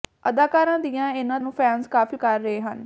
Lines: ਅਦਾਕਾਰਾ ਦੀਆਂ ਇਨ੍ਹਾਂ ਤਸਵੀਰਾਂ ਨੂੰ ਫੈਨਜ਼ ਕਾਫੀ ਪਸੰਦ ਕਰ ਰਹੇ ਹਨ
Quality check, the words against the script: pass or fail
fail